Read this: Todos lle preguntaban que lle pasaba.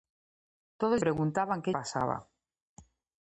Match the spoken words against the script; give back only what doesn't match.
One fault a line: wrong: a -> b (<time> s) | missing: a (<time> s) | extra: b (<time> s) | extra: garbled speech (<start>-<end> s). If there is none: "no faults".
missing: lle (1.0 s)
missing: lle (1.7 s)